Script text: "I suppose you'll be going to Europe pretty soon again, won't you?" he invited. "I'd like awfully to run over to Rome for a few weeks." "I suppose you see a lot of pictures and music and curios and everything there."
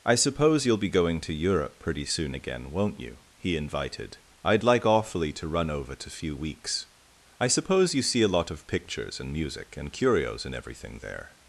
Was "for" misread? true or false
true